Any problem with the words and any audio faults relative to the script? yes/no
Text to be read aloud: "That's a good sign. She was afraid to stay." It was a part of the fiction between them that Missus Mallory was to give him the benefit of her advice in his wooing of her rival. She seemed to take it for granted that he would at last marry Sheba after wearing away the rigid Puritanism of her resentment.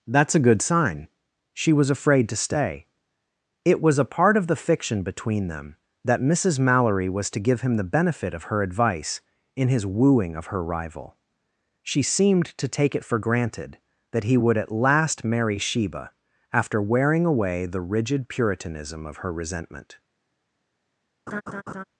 yes